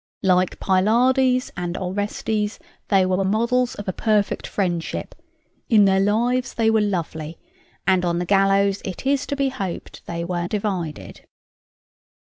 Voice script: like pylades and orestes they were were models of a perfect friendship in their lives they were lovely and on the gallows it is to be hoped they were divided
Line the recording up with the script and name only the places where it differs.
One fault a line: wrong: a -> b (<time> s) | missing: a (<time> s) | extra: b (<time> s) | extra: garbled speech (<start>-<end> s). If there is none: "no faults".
no faults